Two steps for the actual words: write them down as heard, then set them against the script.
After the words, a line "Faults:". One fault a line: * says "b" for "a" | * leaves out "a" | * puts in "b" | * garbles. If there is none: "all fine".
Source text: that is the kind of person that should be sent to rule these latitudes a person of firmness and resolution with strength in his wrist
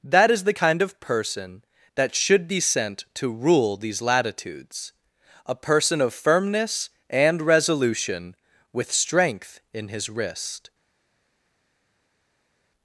that is the kind of person that should be sent to rule these latitudes a person of firmness and resolution with strength in his wrist
Faults:
all fine